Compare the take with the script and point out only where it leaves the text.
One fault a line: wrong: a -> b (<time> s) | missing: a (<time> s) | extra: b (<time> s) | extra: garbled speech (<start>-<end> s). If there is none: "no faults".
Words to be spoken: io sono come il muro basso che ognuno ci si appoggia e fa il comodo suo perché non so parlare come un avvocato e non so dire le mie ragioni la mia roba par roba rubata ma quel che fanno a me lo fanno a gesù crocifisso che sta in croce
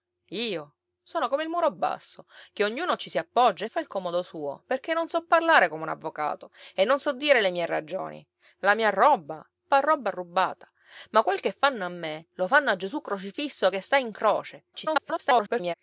extra: garbled speech (14.7-15.7 s)